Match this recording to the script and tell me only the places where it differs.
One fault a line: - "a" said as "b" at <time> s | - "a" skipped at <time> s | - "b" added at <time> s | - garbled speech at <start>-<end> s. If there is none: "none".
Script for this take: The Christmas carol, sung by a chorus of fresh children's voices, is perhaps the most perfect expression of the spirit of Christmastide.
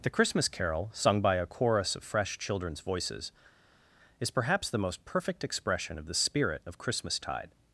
none